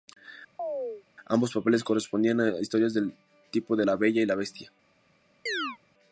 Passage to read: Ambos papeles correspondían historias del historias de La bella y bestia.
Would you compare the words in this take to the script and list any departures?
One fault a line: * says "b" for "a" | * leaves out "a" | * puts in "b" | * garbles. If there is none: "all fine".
* puts in "a"
* says "tipo" for "historias"
* puts in "la"